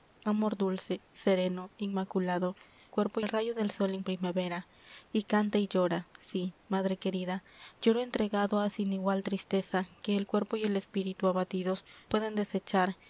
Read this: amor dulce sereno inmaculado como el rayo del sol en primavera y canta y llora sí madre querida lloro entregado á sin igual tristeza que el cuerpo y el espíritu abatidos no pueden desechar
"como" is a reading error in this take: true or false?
true